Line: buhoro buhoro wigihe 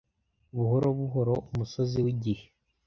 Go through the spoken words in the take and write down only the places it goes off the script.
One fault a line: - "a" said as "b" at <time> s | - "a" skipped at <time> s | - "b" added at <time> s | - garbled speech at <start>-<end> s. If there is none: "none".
- "umusozi" added at 1.5 s